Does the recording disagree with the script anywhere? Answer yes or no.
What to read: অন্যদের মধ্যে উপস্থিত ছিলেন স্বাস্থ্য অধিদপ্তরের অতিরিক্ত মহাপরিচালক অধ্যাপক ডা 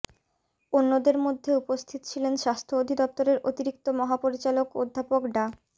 no